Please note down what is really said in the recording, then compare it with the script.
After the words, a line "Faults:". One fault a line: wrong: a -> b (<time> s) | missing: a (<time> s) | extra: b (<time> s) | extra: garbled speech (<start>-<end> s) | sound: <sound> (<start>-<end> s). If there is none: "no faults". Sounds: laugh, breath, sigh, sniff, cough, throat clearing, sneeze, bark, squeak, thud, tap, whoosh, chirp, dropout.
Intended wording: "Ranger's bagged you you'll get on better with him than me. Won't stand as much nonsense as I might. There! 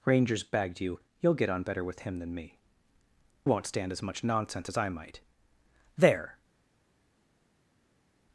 "Ranger's bagged you you'll get on better with him than me. Won't stand as much nonsense as I might. There!
Faults:
no faults